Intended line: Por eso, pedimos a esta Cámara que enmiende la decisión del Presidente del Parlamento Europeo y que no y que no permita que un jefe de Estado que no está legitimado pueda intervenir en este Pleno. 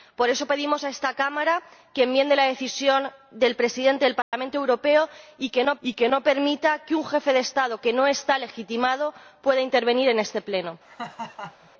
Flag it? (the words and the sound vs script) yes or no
yes